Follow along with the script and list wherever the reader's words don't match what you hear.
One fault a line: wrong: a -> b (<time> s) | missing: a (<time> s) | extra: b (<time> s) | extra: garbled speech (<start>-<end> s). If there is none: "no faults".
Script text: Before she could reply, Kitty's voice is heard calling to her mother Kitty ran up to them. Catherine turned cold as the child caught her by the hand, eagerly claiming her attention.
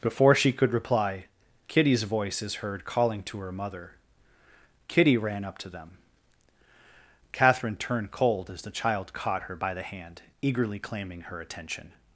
no faults